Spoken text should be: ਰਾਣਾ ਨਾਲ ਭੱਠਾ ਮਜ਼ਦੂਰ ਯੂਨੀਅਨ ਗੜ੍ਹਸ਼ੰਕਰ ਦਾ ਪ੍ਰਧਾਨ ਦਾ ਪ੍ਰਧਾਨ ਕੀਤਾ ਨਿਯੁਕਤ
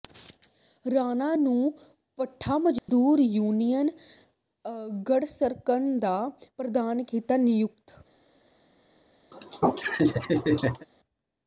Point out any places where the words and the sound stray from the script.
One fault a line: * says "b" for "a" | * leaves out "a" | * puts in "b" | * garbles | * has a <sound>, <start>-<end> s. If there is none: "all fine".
* says "ਨੂੰ" for "ਨਾਲ"
* has a dropout, 2.8-2.9 s
* leaves out "ਦਾ ਪ੍ਰਧਾਨ"
* has a laugh, 9.3-10.9 s